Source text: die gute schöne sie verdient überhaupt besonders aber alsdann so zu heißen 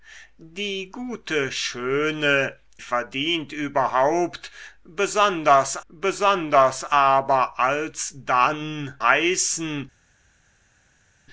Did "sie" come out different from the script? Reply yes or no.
yes